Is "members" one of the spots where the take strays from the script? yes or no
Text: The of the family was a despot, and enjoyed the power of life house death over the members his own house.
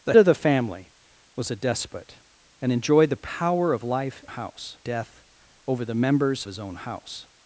no